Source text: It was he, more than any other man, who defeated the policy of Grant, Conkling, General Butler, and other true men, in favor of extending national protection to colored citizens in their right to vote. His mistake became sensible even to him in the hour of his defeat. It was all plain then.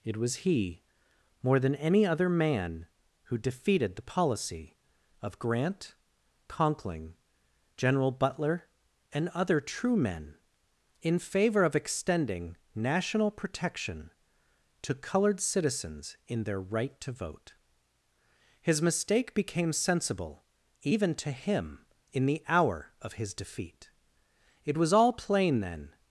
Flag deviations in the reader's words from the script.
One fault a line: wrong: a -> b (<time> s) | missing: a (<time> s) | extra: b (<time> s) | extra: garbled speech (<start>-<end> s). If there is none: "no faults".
no faults